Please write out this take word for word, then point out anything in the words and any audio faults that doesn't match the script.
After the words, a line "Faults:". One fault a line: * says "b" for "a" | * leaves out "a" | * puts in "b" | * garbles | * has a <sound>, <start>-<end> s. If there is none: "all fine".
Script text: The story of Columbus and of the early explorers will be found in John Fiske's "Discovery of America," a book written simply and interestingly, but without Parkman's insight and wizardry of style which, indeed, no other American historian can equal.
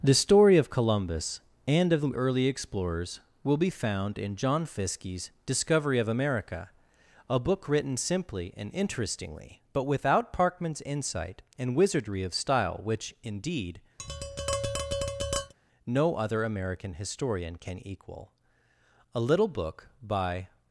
The story of Columbus and of the early explorers will be found in John Fiske's "Discovery of America," a book written simply and interestingly, but without Parkman's insight and wizardry of style which, indeed, no other American historian can equal. A little book by
Faults:
* has a tap, 14.0-15.5 s
* puts in "A little book by"